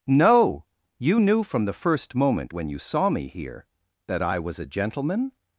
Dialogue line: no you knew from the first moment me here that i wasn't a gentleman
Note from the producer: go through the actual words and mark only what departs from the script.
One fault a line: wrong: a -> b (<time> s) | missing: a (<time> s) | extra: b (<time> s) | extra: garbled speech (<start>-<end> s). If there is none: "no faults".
extra: when you saw (2.5 s)
wrong: wasn't -> was (4.4 s)